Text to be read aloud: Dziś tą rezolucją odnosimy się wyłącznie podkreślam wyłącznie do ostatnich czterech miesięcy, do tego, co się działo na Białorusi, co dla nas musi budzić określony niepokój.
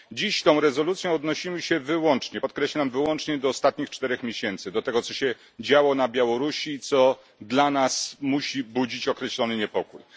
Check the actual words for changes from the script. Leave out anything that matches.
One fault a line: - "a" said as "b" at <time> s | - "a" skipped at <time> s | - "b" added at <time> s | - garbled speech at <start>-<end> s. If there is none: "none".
none